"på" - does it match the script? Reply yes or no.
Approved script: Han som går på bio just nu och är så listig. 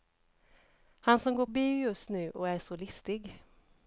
no